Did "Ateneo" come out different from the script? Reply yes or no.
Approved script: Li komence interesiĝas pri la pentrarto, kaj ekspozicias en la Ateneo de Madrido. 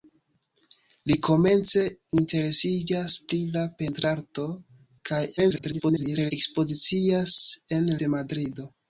yes